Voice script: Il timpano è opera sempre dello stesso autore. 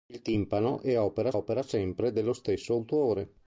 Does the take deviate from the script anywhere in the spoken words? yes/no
yes